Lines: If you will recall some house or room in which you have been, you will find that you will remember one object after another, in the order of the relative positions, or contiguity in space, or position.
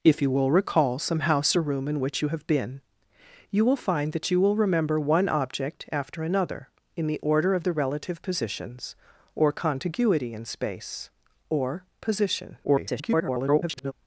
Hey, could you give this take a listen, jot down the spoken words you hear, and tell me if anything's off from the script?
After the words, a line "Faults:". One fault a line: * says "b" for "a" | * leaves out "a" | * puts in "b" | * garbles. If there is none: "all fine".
If you will recall some house or room in which you have been, you will find that you will remember one object after another, in the order of the relative positions, or contiguity in space, or position. [garbled]
Faults:
* garbles